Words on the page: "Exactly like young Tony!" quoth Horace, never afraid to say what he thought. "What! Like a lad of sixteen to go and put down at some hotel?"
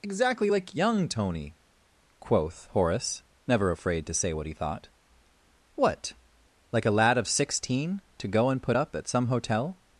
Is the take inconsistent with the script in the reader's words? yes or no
yes